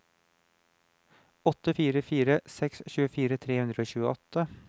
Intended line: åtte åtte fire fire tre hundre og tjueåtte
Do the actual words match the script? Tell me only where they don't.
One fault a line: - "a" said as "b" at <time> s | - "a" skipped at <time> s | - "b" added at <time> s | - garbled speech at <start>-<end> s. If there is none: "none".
- "åtte" said as "fire" at 1.7 s
- "fire" said as "seks tjuefire" at 2.6 s